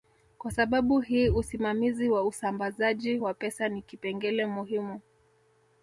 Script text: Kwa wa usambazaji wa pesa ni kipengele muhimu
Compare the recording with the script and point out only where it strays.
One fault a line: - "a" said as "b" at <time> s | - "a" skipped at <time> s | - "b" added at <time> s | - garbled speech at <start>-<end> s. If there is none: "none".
- "sababu hii usimamizi" added at 0.5 s